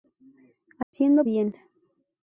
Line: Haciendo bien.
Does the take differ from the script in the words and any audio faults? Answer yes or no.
yes